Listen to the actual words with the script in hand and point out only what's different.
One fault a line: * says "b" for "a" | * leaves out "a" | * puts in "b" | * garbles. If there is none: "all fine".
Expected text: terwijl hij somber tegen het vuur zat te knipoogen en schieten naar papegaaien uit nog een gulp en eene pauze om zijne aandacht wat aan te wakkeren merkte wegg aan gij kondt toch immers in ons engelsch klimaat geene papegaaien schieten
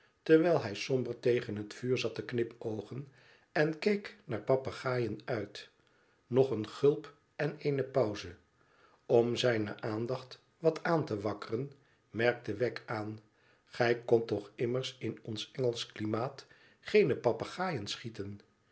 * says "keek" for "schieten"